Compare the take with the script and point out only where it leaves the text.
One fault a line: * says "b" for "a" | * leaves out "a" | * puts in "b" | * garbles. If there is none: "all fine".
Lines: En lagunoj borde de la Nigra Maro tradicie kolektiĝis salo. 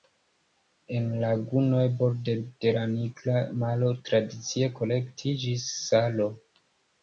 all fine